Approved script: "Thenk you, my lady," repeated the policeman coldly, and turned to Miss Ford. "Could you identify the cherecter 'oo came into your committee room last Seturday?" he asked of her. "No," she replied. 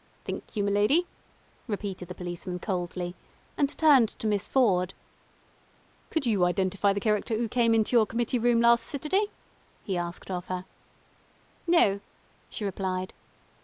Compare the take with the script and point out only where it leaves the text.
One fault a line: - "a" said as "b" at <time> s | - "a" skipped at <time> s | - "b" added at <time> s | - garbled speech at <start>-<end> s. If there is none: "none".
none